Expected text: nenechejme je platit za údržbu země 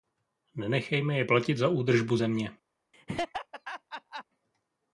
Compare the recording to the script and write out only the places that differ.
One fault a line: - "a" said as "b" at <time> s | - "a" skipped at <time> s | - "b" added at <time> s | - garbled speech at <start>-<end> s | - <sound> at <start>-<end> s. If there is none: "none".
- laugh at 2.9-4.2 s